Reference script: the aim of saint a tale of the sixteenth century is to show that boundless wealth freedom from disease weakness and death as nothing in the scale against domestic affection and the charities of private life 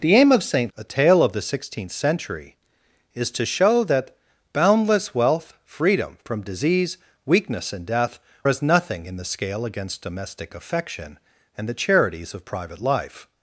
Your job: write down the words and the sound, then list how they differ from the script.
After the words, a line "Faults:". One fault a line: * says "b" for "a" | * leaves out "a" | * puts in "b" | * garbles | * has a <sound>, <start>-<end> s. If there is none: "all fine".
the aim of saint a tale of the sixteenth century is to show that boundless wealth freedom from disease weakness and death as nothing in the scale against domestic affection and the charities of private life
Faults:
all fine